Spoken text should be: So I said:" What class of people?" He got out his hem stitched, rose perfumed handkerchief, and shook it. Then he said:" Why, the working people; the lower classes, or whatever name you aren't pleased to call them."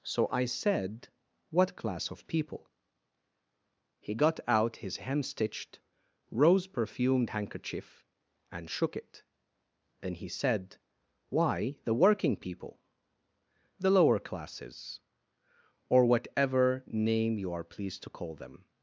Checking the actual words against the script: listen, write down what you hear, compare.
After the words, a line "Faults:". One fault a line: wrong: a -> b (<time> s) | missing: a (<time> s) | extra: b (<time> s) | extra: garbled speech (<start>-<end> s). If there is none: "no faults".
So I said:" What class of people?" He got out his hem stitched, rose perfumed handkerchief, and shook it. Then he said:" Why, the working people; the lower classes, or whatever name you are pleased to call them."
Faults:
wrong: aren't -> are (17.5 s)